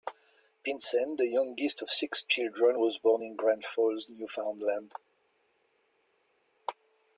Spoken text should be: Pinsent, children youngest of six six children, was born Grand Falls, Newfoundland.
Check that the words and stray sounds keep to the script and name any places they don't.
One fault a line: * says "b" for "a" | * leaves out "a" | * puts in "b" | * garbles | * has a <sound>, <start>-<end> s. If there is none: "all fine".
* says "the" for "children"
* leaves out "six"
* puts in "in"